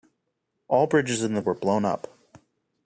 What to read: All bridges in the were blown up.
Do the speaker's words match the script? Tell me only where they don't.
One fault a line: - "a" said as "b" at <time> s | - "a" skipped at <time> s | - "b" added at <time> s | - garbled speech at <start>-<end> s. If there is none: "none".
none